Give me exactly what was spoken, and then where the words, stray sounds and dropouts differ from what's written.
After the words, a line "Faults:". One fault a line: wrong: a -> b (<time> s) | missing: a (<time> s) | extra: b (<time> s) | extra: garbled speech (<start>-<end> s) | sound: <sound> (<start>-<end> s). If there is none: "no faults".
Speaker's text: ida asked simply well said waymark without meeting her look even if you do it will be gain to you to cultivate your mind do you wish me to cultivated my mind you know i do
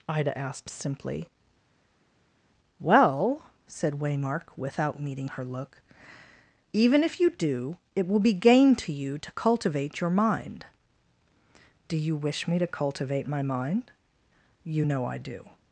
ida asked simply well said waymark without meeting her look even if you do it will be gain to you to cultivate your mind do you wish me to cultivate my mind you know i do
Faults:
wrong: cultivated -> cultivate (12.7 s)